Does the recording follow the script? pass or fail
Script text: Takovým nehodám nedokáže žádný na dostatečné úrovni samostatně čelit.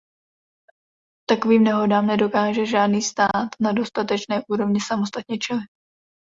fail